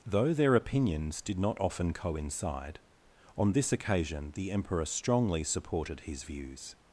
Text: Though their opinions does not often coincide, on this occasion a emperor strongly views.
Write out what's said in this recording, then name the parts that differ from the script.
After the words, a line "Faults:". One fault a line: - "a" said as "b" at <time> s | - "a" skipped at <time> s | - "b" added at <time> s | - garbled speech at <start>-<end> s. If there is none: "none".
Though their opinions did not often coincide, on this occasion the emperor strongly supported his views.
Faults:
- "does" said as "did" at 1.2 s
- "a" said as "the" at 4.3 s
- "supported his" added at 5.4 s